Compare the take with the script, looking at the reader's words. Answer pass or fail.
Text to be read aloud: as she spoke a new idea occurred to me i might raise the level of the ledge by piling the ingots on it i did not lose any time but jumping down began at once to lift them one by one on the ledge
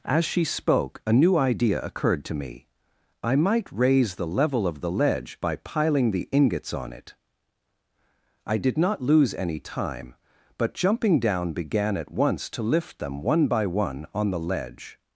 pass